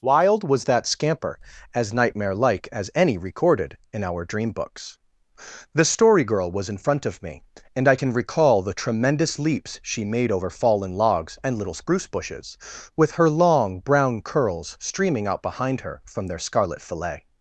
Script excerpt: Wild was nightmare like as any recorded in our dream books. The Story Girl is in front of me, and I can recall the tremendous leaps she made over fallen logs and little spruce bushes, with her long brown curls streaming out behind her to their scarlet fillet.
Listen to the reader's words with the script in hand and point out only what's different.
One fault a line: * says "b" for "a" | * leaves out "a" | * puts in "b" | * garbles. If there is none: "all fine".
* puts in "that scamper as"
* says "was" for "is"
* says "from" for "to"